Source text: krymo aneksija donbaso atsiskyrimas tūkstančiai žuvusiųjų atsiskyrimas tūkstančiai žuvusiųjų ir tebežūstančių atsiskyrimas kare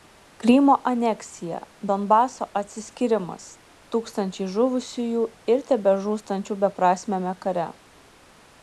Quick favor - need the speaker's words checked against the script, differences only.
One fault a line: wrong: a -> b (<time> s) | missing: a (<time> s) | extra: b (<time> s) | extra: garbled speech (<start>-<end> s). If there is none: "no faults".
missing: atsiskyrimas tūkstančiai žuvusiųjų (5.3 s)
wrong: atsiskyrimas -> beprasmiame (6.6 s)